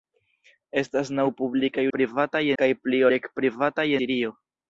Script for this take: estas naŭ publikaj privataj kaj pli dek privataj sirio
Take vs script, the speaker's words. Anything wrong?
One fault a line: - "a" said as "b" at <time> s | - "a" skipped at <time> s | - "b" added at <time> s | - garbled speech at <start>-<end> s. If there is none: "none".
none